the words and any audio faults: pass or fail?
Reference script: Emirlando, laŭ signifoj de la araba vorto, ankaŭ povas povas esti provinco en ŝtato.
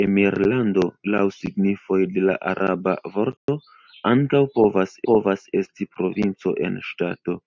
fail